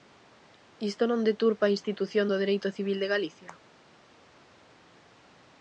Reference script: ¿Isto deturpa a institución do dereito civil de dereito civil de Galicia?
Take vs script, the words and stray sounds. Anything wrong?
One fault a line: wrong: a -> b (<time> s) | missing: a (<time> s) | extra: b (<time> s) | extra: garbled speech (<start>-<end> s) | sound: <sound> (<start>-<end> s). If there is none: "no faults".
extra: non (1.1 s)
missing: dereito civil de (3.1 s)